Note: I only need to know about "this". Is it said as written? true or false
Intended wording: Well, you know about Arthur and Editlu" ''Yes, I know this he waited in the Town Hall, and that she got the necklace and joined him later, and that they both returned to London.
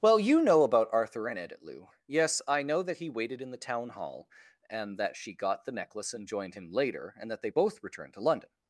false